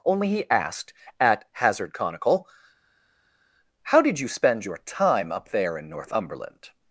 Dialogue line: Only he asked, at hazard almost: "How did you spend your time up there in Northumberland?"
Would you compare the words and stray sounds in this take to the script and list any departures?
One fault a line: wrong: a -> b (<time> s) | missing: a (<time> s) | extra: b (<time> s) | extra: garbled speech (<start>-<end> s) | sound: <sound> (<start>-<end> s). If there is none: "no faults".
wrong: almost -> conical (1.9 s)